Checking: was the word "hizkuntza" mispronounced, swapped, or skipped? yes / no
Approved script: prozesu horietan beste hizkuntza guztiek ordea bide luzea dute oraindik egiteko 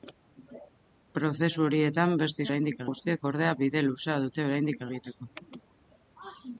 yes